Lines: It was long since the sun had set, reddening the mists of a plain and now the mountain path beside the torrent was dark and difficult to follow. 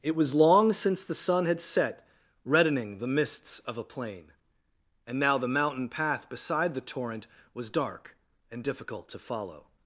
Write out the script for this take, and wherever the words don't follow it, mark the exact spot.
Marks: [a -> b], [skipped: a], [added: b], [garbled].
It was long since the sun had set, reddening the mists of a plain and now the mountain path beside the torrent was dark and difficult to follow.